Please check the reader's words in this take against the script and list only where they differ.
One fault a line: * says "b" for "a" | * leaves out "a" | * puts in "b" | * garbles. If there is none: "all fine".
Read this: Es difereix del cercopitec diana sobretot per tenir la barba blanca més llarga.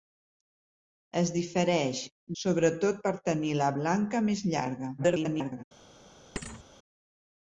* leaves out "del cercopitec diana"
* leaves out "barba"
* garbles